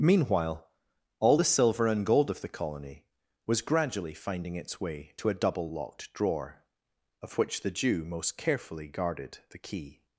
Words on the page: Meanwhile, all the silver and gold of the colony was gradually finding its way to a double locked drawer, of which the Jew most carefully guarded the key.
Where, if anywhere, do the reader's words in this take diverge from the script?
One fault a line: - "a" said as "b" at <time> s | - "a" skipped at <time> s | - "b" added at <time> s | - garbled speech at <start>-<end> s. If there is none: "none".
none